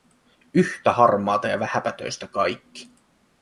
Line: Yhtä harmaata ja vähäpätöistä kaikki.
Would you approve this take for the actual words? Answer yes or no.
yes